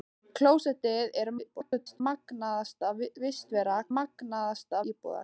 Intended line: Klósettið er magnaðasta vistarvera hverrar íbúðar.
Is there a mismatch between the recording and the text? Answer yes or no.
yes